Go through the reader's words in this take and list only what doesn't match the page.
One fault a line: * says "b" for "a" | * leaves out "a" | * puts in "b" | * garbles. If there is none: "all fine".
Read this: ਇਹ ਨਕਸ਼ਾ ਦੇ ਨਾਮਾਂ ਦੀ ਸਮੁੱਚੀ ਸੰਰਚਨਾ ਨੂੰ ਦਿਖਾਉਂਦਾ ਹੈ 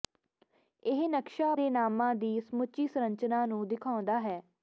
all fine